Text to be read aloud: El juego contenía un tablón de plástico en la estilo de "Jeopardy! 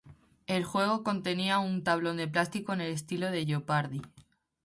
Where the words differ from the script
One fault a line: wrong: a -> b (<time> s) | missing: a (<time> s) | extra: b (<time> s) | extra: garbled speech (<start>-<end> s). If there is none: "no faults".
wrong: la -> el (2.8 s)